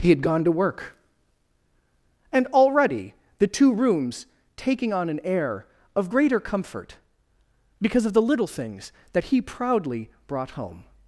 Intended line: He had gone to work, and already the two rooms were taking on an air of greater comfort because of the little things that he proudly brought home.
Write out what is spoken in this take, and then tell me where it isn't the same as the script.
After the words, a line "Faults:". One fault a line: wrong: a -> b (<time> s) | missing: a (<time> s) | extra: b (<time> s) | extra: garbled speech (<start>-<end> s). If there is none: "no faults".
He had gone to work, and already the two rooms taking on an air of greater comfort because of the little things that he proudly brought home.
Faults:
missing: were (4.2 s)